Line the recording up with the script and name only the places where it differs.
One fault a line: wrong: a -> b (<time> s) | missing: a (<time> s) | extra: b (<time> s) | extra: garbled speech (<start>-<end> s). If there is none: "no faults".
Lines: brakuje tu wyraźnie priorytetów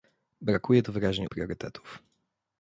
no faults